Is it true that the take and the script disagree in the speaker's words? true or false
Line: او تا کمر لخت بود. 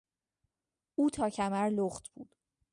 false